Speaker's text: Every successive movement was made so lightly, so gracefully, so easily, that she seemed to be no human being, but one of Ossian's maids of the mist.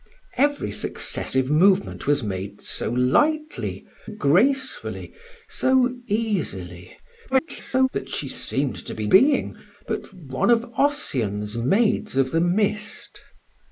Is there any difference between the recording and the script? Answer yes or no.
yes